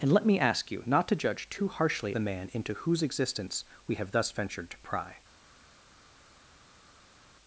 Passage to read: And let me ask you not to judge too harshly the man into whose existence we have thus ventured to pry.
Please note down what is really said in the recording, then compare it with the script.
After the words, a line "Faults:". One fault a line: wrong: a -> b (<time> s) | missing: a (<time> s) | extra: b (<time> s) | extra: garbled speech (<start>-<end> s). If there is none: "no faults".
And let me ask you not to judge too harshly the man into whose existence we have thus ventured to pry.
Faults:
no faults